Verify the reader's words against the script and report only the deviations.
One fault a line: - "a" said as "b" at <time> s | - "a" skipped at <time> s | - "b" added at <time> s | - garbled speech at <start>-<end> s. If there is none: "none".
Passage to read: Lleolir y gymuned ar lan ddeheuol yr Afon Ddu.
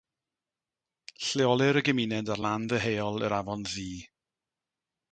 none